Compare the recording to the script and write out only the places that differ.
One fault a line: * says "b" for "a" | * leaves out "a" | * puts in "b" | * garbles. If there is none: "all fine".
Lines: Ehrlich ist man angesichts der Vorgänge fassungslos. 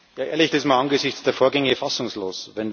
all fine